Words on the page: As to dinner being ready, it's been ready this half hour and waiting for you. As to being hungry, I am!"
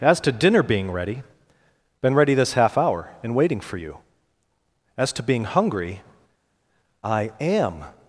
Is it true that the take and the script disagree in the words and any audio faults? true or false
true